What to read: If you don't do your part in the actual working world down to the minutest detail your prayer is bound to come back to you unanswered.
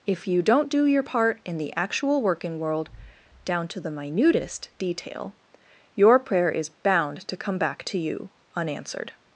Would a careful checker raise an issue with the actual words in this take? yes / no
no